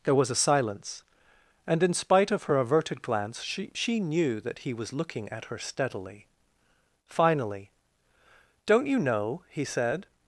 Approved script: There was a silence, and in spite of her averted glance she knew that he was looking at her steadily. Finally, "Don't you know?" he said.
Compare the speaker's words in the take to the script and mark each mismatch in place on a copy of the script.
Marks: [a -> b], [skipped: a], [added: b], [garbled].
There was a silence, and in spite of her averted glance she [added: she] knew that he was looking at her steadily. Finally, "Don't you know?" he said.